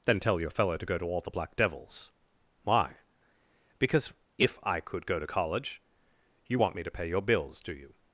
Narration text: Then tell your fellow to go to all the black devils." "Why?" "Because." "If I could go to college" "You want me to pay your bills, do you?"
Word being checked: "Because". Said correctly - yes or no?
yes